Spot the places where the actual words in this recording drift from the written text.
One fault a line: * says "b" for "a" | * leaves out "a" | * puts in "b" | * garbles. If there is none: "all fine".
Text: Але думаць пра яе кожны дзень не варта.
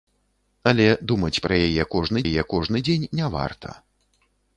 * puts in "яе кожны"